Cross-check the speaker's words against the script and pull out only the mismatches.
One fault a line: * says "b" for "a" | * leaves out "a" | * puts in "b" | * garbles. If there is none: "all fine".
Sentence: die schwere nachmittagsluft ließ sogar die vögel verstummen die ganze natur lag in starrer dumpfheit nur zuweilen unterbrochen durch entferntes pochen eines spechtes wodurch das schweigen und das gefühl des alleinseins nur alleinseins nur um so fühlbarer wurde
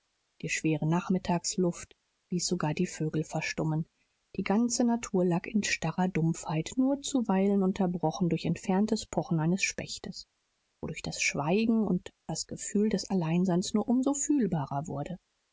* leaves out "alleinseins nur"